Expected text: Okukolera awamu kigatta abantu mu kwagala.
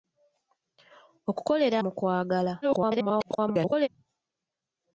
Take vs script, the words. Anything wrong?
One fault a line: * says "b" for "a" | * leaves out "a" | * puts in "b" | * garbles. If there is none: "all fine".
* leaves out "awamu kigatta abantu"
* garbles